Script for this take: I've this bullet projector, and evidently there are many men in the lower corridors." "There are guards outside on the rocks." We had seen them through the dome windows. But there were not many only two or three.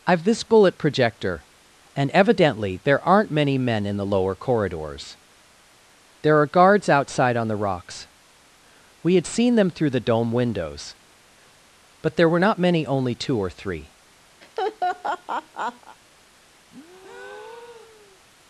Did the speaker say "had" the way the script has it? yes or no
yes